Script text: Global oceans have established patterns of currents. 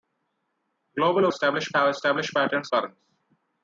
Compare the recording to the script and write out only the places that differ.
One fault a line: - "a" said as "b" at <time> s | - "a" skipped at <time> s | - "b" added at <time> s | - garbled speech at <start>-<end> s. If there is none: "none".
- "oceans" said as "established" at 1.3 s
- "of" skipped at 2.7 s